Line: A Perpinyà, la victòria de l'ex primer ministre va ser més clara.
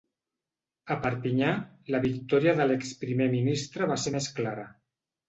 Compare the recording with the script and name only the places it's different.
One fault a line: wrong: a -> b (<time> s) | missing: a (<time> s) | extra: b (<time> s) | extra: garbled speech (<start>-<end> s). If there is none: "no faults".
no faults